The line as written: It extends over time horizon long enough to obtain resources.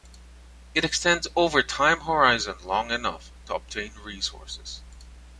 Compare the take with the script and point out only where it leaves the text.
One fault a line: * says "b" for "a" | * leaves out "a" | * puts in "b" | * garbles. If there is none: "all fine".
all fine